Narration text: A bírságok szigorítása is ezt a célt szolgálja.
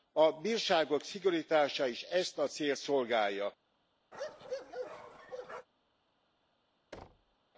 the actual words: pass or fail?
pass